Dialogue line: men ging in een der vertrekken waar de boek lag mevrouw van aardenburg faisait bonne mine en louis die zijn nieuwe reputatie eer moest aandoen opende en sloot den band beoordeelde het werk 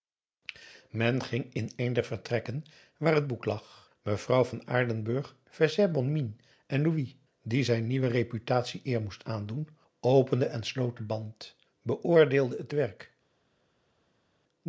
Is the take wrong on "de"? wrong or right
wrong